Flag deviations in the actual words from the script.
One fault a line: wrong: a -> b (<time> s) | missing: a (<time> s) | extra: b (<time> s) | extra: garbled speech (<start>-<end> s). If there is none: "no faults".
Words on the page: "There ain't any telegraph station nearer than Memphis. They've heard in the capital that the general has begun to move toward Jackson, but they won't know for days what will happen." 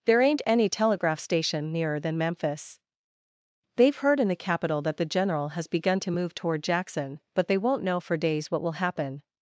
no faults